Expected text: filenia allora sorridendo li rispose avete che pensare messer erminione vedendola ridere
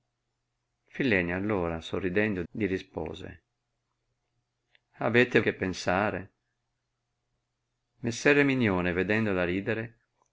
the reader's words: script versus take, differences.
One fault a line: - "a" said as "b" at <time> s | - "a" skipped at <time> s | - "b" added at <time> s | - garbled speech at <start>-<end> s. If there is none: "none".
none